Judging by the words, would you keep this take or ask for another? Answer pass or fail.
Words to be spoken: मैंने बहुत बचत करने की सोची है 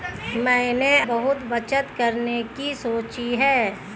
pass